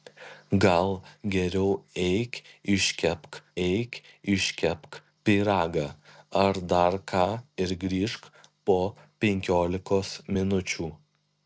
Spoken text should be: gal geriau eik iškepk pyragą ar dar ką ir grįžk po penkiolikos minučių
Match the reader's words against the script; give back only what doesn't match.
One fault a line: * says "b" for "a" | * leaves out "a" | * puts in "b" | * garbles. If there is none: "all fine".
* puts in "eik iškepk"